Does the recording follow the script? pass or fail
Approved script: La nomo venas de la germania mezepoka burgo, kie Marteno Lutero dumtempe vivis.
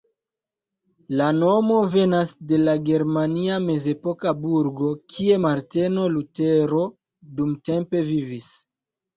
pass